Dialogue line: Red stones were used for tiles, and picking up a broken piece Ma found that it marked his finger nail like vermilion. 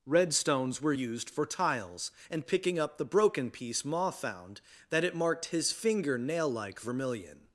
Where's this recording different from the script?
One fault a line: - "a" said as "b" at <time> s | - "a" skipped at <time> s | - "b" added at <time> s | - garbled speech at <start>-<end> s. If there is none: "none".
- "a" said as "the" at 3.0 s